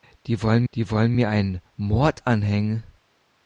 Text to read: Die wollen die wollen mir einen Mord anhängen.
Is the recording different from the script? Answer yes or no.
no